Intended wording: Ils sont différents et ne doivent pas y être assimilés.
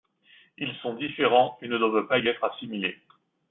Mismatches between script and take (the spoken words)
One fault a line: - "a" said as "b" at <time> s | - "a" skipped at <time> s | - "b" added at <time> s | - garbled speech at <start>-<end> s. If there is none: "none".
none